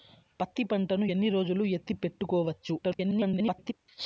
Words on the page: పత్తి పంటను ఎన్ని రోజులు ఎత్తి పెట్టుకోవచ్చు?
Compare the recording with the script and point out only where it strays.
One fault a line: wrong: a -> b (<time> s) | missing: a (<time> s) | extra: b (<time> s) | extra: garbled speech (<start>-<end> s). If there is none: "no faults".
extra: garbled speech (2.8-3.7 s)